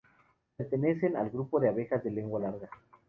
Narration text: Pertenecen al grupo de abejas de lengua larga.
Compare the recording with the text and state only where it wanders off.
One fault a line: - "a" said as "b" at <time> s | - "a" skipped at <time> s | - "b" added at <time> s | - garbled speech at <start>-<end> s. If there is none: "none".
none